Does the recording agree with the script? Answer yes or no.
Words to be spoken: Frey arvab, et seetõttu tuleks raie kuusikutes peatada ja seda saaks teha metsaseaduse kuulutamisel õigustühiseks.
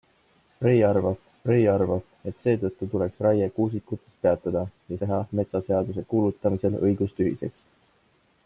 no